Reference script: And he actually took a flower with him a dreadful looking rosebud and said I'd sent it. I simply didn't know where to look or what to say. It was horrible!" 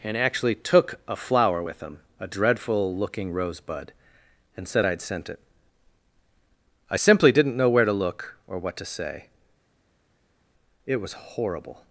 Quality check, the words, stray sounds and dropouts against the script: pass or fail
fail